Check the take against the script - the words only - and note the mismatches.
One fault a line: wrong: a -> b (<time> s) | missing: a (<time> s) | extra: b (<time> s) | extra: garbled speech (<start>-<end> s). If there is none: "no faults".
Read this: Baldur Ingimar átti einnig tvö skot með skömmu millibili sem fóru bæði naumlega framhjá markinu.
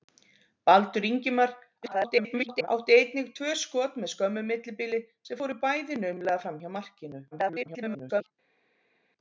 extra: garbled speech (1.8-2.7 s)
extra: garbled speech (7.3-8.3 s)